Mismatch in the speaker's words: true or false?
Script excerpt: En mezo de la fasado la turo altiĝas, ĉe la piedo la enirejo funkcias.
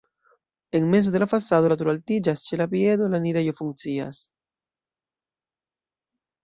false